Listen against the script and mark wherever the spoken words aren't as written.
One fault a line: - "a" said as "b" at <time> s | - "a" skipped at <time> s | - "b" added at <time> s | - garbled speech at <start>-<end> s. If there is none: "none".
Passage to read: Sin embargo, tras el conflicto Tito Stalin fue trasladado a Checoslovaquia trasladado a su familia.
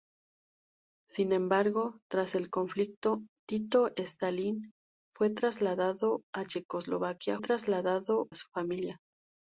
none